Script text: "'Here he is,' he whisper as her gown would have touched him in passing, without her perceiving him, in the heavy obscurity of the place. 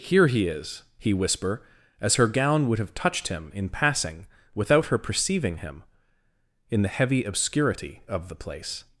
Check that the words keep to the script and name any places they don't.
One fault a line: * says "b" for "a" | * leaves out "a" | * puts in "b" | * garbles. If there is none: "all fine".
all fine